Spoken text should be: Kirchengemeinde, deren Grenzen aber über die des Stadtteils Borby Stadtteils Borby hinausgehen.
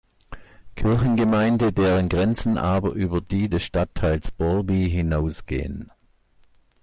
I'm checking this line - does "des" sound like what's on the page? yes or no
yes